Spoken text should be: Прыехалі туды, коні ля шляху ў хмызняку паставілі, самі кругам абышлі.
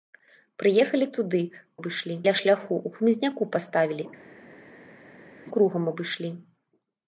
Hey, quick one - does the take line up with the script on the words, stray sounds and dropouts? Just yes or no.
no